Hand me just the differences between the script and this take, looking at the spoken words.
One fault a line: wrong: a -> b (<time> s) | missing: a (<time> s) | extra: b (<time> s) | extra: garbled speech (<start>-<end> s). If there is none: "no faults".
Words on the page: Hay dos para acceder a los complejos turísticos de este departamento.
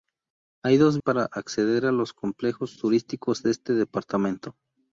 no faults